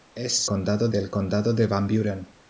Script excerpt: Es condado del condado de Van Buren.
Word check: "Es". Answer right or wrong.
right